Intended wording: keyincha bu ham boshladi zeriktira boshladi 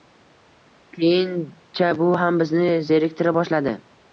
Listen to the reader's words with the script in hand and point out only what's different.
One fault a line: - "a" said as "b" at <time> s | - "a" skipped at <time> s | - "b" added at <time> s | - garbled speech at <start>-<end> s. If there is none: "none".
- "boshladi" said as "bizni" at 2.4 s